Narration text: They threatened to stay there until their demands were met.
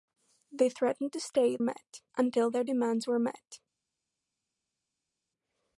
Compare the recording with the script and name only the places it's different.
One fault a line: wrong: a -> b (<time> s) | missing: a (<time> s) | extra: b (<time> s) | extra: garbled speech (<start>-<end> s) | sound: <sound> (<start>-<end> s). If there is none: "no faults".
wrong: there -> met (1.6 s)